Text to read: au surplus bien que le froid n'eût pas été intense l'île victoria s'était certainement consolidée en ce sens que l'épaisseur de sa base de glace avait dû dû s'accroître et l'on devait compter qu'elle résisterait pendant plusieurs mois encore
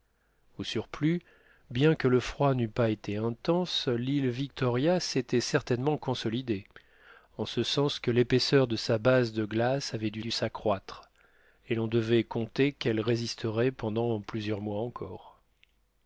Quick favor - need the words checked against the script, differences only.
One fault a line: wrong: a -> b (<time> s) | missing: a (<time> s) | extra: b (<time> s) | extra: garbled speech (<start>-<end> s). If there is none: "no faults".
no faults